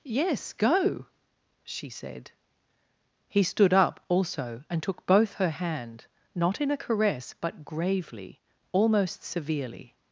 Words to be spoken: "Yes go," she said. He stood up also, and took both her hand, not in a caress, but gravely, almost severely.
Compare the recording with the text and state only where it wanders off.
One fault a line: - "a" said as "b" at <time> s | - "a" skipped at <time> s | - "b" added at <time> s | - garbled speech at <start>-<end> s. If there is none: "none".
none